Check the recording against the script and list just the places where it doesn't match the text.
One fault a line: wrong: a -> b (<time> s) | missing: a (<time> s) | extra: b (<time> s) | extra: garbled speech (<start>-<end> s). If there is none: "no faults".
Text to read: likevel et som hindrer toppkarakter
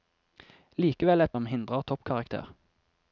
no faults